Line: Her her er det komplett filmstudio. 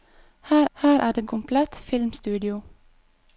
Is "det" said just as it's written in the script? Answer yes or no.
yes